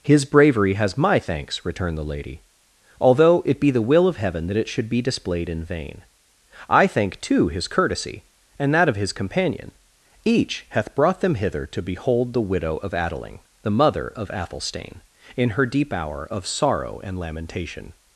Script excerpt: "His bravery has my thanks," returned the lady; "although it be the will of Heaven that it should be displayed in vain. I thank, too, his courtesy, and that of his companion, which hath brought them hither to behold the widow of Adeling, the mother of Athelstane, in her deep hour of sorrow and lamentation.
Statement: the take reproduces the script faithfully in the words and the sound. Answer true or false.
false